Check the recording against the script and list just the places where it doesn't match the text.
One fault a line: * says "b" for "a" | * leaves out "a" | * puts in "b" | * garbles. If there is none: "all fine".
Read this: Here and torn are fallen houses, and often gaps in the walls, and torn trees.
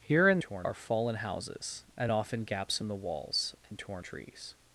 all fine